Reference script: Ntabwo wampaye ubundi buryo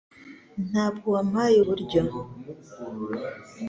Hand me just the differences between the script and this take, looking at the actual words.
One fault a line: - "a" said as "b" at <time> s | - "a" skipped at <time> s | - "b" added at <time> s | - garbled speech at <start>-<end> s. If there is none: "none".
- "ubundi" skipped at 1.6 s